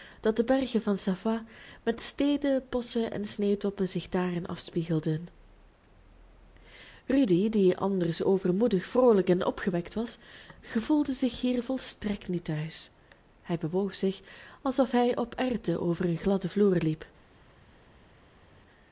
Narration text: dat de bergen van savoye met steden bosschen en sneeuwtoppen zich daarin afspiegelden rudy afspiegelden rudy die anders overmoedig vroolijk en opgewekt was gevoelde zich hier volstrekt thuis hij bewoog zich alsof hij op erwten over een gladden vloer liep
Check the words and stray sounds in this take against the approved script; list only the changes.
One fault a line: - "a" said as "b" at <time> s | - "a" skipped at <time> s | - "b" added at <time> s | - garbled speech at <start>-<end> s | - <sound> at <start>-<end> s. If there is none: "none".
- "afspiegelden rudy" skipped at 7.5 s
- "niet" added at 12.3 s